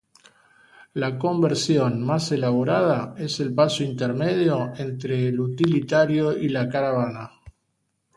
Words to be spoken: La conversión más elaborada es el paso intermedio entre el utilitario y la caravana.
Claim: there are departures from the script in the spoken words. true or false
false